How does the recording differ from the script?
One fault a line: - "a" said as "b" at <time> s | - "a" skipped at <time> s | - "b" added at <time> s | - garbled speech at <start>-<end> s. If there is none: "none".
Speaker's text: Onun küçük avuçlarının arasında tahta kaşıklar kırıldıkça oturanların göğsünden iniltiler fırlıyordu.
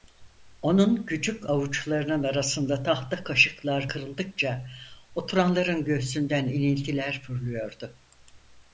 none